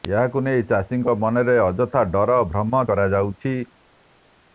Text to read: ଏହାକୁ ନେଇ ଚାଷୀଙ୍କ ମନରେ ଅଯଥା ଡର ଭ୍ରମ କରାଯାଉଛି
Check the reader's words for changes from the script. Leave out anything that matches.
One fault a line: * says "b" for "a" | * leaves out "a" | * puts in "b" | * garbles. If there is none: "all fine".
all fine